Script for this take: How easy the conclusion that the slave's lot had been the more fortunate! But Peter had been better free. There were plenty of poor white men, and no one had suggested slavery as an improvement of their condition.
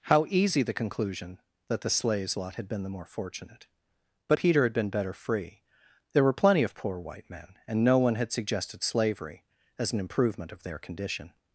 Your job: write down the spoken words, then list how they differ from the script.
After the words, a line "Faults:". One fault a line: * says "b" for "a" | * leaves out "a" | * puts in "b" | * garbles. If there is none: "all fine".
How easy the conclusion that the slave's lot had been the more fortunate! But Peter had been better free. There were plenty of poor white men, and no one had suggested slavery as an improvement of their condition.
Faults:
all fine